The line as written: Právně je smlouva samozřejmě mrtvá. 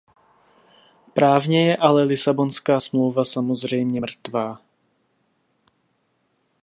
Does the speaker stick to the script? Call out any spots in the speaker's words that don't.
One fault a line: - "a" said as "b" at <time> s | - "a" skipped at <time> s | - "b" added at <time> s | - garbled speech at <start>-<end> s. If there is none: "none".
- "ale Lisabonská" added at 1.8 s